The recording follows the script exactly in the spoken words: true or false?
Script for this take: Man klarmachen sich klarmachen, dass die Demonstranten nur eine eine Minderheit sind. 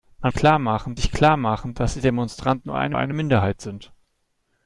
true